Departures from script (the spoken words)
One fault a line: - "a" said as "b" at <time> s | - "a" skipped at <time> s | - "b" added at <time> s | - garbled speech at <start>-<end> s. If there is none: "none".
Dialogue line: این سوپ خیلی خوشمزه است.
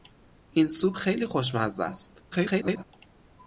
- garbled speech at 2.3-2.8 s